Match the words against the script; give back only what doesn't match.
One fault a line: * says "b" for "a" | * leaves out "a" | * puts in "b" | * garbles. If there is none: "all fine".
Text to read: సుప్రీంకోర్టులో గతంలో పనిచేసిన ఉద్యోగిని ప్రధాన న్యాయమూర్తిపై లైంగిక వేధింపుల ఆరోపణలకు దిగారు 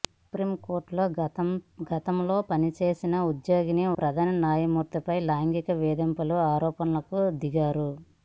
all fine